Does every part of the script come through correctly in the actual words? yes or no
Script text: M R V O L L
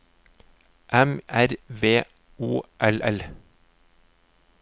yes